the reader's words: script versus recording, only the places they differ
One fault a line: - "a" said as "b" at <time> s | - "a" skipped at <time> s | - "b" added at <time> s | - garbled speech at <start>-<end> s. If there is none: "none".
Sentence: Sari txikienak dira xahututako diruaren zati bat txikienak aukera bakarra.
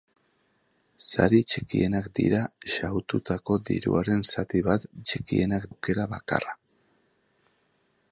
none